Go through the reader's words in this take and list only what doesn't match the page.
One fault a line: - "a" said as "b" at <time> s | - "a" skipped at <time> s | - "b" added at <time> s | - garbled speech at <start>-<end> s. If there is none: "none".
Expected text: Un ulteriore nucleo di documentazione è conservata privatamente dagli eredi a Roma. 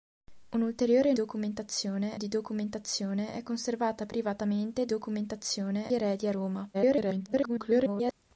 - "nucleo" said as "documentazione" at 1.1 s
- "dagli" said as "documentazione" at 4.8 s
- garbled speech at 6.7-8.1 s